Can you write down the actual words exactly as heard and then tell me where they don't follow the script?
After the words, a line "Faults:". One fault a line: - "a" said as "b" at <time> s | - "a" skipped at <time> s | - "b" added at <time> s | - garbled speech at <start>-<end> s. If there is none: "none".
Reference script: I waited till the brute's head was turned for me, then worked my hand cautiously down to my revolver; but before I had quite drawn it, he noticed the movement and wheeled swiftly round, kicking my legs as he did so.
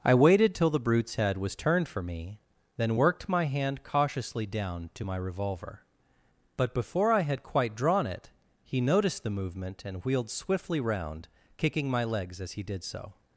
I waited till the brute's head was turned for me, then worked my hand cautiously down to my revolver; but before I had quite drawn it, he noticed the movement and wheeled swiftly round, kicking my legs as he did so.
Faults:
none